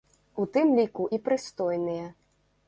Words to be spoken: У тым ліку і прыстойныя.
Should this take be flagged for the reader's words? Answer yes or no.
no